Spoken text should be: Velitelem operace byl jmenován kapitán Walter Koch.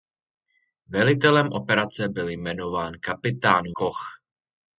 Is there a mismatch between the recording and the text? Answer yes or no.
yes